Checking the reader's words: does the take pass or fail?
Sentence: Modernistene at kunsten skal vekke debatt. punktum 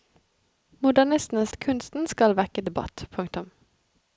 pass